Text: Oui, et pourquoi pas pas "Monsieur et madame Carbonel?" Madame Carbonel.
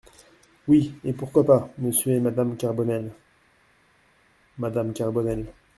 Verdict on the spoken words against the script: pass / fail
fail